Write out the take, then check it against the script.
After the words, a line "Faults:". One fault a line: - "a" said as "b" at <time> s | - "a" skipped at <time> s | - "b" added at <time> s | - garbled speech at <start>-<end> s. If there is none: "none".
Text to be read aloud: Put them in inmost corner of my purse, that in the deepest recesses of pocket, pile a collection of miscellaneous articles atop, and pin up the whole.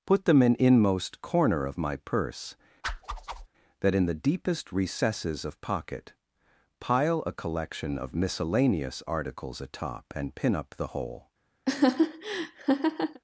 Put them in inmost corner of my purse, that in the deepest recesses of pocket, pile a collection of miscellaneous articles atop, and pin up the whole.
Faults:
none